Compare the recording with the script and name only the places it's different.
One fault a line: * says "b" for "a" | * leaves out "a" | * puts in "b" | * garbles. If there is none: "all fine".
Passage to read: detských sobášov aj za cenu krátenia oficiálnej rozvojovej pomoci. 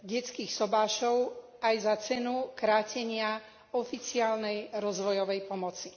all fine